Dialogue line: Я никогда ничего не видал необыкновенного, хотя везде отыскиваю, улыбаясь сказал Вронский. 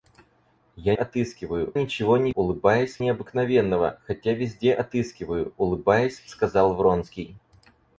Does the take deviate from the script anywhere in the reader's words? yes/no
yes